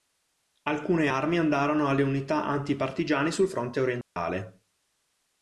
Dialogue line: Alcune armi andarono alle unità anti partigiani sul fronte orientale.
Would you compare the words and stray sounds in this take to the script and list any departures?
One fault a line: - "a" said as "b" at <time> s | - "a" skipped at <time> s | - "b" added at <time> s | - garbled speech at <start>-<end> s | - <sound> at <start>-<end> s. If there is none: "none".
- dropout at 4.0-4.2 s